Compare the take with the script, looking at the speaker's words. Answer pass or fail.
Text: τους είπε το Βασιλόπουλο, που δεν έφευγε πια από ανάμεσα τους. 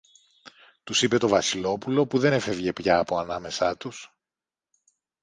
pass